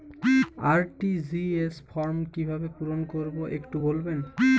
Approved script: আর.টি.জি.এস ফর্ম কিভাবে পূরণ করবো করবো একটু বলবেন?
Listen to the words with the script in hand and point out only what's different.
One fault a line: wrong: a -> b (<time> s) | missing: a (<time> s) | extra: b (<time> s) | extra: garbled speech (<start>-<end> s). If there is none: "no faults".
missing: করবো (3.4 s)